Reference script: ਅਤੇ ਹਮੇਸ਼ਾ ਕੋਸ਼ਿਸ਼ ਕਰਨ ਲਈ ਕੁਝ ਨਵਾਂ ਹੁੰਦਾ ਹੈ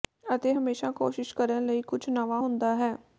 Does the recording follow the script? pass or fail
pass